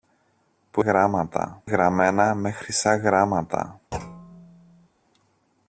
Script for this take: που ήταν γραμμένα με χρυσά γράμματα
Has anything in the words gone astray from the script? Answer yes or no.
yes